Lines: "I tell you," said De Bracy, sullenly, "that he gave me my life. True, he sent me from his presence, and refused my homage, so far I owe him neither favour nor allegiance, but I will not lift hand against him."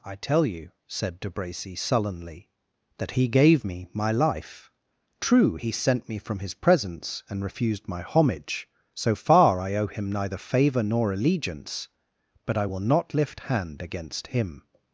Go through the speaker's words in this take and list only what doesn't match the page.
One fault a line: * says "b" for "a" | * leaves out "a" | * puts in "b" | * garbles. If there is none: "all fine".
all fine